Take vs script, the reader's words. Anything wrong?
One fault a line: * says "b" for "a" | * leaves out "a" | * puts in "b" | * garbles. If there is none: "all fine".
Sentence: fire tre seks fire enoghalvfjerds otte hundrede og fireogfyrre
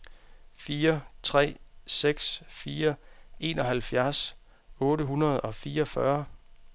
all fine